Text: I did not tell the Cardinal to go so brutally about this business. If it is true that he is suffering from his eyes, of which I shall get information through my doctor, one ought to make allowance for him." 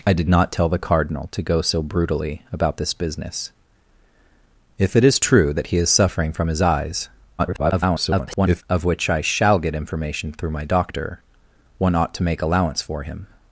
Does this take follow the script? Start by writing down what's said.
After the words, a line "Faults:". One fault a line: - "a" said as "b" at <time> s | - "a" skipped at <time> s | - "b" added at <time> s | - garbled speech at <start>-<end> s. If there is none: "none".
I did not tell the Cardinal to go so brutally about this business. If it is true that he is suffering from his eyes, [garbled] of which I shall get information through my doctor, one ought to make allowance for him."
Faults:
- garbled speech at 7.4-8.6 s